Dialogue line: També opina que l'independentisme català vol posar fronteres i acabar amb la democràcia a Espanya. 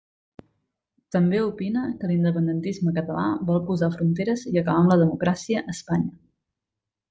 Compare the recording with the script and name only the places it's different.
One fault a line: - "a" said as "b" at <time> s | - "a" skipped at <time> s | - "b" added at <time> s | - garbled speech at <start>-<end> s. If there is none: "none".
none